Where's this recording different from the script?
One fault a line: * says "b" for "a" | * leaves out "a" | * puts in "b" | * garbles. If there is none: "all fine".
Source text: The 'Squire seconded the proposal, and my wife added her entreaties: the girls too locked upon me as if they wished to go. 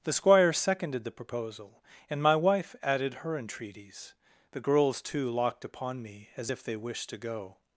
all fine